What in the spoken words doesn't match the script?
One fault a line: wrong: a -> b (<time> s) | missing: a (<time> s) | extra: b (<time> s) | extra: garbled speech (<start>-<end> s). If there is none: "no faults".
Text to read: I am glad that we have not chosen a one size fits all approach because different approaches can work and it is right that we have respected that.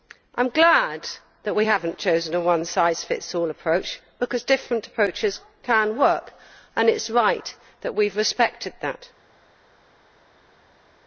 no faults